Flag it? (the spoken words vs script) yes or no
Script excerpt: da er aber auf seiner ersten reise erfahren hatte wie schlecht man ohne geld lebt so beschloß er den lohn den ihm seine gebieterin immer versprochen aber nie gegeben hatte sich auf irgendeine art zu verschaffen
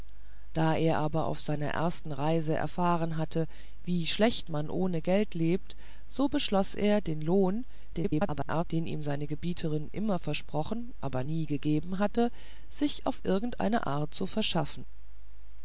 yes